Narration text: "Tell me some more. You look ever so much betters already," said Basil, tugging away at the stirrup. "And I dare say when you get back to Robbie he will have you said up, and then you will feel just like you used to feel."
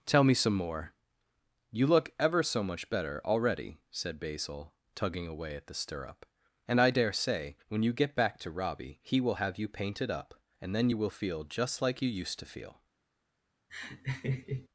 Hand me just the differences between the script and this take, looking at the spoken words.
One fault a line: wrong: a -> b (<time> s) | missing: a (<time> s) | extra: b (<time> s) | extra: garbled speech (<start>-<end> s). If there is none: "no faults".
wrong: betters -> better (2.9 s)
wrong: said -> painted (9.7 s)